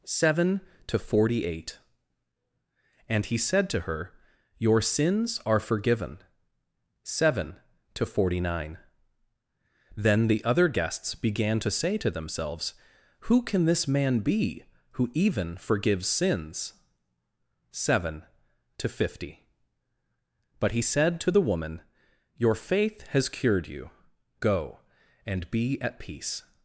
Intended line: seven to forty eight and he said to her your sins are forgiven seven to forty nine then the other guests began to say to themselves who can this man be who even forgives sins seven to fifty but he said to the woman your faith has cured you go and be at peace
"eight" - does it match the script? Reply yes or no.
yes